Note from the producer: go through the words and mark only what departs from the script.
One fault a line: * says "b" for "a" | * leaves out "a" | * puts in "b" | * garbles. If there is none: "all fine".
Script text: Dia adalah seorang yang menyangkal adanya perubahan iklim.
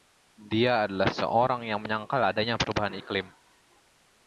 all fine